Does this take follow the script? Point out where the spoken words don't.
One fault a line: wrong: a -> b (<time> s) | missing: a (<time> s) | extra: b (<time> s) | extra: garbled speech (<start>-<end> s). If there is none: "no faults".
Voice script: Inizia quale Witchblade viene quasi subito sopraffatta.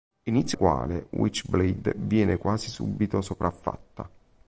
no faults